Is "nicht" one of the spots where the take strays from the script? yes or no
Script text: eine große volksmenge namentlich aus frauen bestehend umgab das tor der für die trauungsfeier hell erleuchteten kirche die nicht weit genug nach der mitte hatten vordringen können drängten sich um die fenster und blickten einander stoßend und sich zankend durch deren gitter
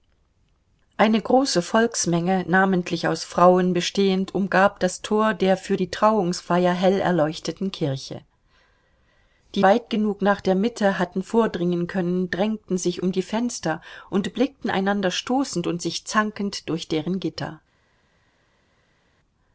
yes